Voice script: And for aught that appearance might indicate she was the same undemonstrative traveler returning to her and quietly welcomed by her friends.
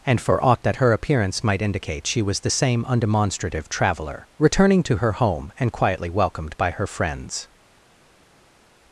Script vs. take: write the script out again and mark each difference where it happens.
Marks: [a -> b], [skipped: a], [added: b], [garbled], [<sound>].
And for aught that [added: her] appearance might indicate she was the same undemonstrative traveler returning to her [added: home] and quietly welcomed by her friends.